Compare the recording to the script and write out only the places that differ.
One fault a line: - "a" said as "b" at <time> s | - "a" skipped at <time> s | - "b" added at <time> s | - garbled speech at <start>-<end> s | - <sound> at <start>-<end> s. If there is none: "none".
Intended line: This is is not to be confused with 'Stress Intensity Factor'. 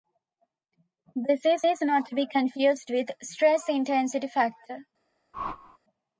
- whoosh at 5.3-5.8 s